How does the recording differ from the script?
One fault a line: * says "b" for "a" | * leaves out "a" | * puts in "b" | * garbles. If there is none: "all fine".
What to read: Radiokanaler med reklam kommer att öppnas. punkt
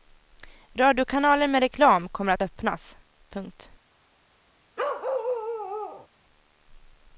all fine